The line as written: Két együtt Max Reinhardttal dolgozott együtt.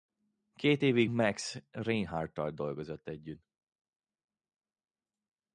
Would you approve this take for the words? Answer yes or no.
no